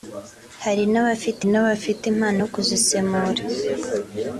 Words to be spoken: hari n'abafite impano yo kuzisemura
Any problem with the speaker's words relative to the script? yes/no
yes